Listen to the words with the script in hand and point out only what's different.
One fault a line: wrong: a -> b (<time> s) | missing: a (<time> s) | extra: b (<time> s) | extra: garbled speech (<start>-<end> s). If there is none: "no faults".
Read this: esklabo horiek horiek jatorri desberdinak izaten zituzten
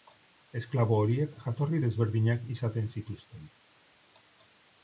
missing: horiek (1.4 s)